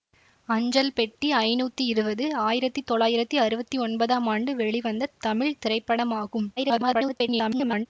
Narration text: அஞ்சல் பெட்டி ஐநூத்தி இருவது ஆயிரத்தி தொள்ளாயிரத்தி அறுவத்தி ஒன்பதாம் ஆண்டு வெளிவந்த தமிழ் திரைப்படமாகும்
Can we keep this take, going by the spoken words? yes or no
no